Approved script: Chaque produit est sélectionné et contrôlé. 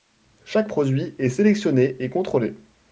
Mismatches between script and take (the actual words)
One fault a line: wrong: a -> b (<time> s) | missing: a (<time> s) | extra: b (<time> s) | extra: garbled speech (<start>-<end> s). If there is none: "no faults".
no faults